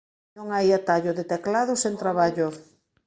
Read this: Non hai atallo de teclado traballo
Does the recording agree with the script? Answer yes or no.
no